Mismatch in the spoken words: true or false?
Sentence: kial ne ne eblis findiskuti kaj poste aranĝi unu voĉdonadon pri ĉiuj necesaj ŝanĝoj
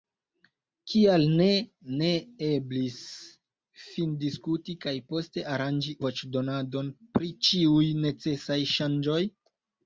true